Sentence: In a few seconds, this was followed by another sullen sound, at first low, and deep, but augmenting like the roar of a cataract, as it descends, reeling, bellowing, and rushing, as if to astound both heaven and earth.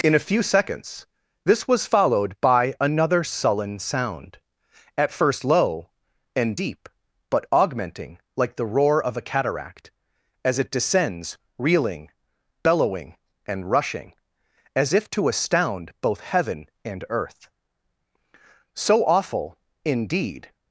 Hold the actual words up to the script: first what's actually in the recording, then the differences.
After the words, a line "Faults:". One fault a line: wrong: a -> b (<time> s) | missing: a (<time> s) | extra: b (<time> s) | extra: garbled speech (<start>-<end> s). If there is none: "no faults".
In a few seconds, this was followed by another sullen sound, at first low, and deep, but augmenting like the roar of a cataract, as it descends, reeling, bellowing, and rushing, as if to astound both heaven and earth. So awful, indeed
Faults:
extra: So awful indeed (18.7 s)